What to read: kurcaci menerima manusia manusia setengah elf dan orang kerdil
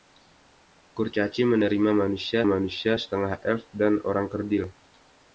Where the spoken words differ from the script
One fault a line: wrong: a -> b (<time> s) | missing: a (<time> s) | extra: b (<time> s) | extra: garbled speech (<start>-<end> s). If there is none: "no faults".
no faults